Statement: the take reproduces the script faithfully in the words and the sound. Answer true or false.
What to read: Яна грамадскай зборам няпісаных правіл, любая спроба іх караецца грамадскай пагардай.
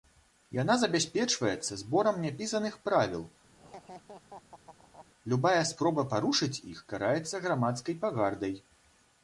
false